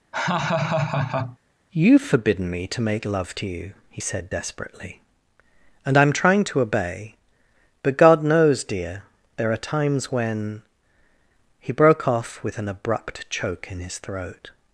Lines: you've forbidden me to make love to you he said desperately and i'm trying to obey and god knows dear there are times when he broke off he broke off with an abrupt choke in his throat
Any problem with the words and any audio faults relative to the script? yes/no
yes